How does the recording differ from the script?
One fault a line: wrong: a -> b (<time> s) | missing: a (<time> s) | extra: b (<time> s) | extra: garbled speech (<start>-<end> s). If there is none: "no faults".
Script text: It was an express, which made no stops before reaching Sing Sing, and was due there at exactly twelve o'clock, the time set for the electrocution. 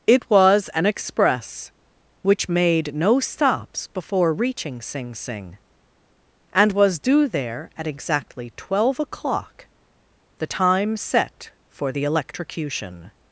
no faults